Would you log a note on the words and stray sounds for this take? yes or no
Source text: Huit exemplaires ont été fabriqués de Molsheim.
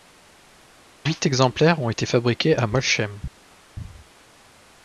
yes